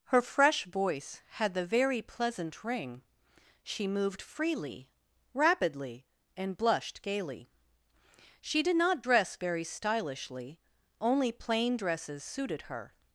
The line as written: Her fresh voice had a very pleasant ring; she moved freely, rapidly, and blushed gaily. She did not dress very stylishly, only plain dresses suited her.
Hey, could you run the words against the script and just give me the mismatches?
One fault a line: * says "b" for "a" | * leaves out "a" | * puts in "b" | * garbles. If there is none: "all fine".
* says "the" for "a"